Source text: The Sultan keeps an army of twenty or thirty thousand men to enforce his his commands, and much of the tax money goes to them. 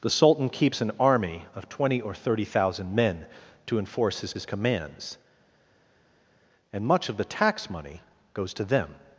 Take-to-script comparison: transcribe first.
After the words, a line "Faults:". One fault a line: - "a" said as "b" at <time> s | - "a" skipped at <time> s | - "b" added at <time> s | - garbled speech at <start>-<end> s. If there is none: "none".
The Sultan keeps an army of twenty or thirty thousand men to enforce his his commands, and much of the tax money goes to them.
Faults:
none